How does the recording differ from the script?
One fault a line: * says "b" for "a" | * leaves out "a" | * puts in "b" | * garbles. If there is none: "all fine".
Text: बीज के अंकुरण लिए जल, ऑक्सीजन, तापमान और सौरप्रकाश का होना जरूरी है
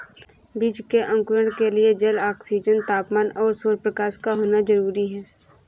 * puts in "के"